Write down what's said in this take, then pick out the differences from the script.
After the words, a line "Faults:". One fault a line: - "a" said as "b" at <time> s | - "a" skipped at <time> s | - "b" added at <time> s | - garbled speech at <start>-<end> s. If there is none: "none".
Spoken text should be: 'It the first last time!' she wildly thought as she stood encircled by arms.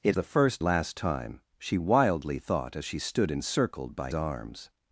'It the first last time!' she wildly thought as she stood encircled by arms.
Faults:
none